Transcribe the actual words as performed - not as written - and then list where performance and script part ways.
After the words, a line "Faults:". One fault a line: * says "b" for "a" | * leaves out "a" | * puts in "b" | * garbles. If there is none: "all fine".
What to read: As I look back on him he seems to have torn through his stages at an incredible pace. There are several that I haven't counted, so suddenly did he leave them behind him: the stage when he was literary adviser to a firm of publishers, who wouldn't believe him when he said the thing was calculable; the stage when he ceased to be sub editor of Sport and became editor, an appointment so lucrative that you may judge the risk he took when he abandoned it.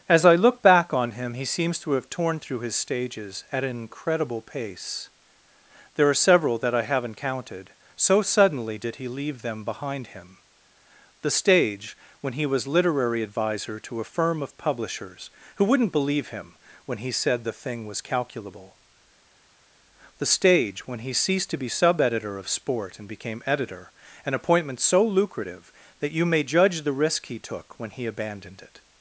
As I look back on him he seems to have torn through his stages at an incredible pace. There are several that I haven't counted, so suddenly did he leave them behind him: the stage when he was literary adviser to a firm of publishers, who wouldn't believe him when he said the thing was calculable; the stage when he ceased to be sub editor of Sport and became editor, an appointment so lucrative that you may judge the risk he took when he abandoned it.
Faults:
all fine